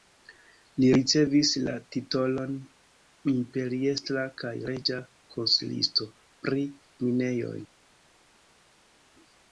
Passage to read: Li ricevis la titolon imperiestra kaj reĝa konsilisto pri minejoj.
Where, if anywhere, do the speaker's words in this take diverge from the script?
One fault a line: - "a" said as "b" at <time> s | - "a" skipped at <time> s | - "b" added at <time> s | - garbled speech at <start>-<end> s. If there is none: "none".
none